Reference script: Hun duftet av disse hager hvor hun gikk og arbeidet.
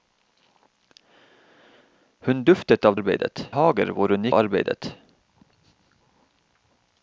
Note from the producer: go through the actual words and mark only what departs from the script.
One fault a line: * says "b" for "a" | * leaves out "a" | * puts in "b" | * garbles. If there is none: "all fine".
* says "arbeidet" for "disse"
* leaves out "gikk"